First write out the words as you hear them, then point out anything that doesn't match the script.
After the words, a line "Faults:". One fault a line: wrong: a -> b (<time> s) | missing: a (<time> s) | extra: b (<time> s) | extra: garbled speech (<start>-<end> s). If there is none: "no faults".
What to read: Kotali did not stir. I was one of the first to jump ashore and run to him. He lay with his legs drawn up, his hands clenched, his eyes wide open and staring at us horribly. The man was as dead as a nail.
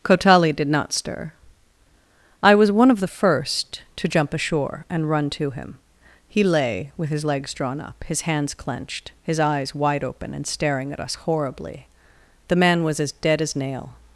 Kotali did not stir. I was one of the first to jump ashore and run to him. He lay with his legs drawn up, his hands clenched, his eyes wide open and staring at us horribly. The man was as dead as nail.
Faults:
missing: a (13.6 s)